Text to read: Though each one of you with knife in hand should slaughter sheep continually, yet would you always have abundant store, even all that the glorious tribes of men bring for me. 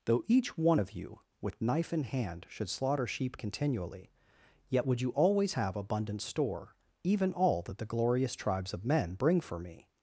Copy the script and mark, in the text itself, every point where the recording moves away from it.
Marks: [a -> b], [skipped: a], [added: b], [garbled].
Though each one of you with knife in hand should slaughter sheep continually, yet would you always have abundant store, even all that the glorious tribes of men bring for me.